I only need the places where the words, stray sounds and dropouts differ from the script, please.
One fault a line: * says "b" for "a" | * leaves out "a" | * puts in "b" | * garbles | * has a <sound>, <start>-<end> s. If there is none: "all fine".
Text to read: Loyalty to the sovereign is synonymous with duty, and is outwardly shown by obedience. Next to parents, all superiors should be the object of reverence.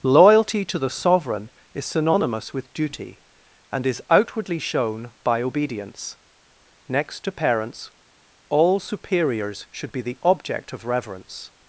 all fine